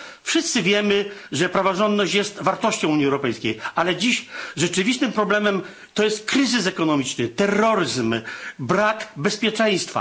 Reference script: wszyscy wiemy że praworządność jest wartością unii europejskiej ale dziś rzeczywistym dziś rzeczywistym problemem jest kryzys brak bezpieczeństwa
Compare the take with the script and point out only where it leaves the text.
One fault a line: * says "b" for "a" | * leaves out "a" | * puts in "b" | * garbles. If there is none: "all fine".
* leaves out "dziś rzeczywistym"
* puts in "ekonomiczny terroryzm"